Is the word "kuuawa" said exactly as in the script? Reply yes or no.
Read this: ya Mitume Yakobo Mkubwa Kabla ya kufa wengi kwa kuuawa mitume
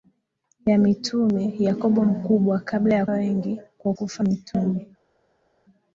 no